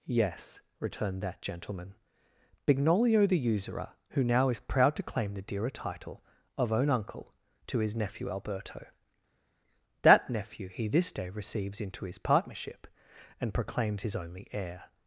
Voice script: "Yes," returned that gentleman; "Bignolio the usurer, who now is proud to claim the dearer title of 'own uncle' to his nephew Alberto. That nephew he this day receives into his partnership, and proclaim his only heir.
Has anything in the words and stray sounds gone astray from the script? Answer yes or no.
yes